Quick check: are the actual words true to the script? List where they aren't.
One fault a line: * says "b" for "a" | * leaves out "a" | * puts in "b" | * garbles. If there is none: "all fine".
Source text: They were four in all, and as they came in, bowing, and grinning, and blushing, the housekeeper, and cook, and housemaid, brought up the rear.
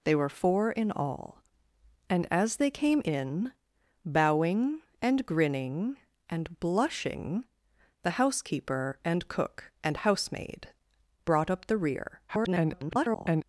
* garbles